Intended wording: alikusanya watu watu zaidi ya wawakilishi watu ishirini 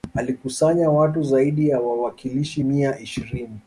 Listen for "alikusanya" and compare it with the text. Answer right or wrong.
right